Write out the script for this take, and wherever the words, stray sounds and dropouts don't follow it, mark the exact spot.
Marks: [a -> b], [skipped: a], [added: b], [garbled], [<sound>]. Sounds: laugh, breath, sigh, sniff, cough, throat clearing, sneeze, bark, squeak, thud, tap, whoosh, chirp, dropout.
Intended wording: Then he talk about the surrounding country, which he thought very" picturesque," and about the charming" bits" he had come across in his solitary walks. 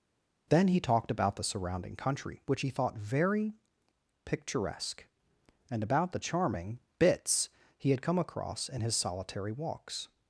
Then he [talk -> talked] about the surrounding country, which he thought very" picturesque," and about the charming" bits" he had come across in his solitary walks.